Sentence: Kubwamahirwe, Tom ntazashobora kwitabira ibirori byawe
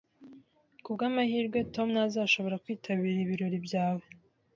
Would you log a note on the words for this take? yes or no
no